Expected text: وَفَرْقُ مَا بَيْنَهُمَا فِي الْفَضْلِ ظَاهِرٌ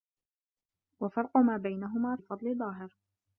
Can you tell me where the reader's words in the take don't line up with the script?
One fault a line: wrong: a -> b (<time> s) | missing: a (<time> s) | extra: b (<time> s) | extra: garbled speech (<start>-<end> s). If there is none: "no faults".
missing: فِي (2.2 s)